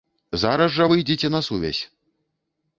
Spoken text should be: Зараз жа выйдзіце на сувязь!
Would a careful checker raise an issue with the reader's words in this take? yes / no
no